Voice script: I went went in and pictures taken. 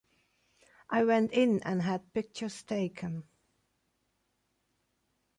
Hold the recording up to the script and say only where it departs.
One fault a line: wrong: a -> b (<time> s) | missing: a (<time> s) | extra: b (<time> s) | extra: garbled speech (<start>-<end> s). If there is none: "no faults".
missing: went (1.3 s)
extra: had (1.8 s)